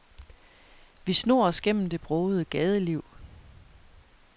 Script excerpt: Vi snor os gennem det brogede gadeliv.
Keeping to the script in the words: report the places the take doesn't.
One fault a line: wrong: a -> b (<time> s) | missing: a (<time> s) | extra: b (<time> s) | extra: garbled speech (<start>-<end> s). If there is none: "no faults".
no faults